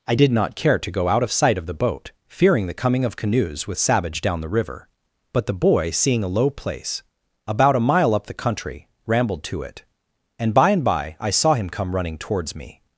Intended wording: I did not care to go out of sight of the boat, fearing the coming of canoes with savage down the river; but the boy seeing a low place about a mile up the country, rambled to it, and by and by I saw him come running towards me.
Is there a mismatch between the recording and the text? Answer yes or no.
no